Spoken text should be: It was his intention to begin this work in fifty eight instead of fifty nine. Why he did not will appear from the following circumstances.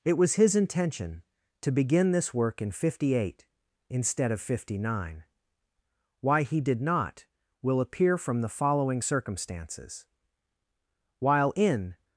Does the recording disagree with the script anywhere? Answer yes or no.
yes